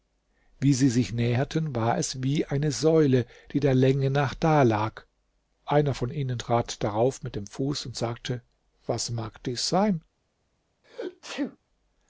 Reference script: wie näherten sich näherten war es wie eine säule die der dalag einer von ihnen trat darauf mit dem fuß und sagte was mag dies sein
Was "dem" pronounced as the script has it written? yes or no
yes